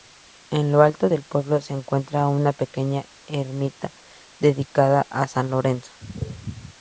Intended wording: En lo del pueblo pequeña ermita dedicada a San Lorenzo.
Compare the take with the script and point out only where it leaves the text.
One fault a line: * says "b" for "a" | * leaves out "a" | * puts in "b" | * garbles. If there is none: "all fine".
* puts in "alto"
* puts in "se encuentra una"